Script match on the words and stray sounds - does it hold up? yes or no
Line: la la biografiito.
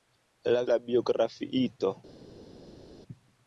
yes